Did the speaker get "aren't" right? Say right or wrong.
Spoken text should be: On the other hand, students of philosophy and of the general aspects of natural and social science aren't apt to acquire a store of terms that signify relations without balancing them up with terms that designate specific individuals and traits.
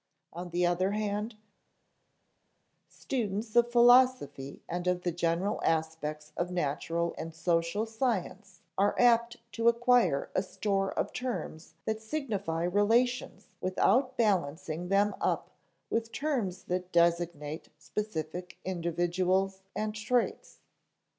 wrong